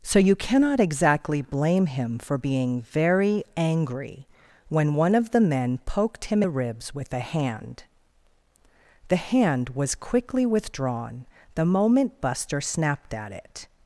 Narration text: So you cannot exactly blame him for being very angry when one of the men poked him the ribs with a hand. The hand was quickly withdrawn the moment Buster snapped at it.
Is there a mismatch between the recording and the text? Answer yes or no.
no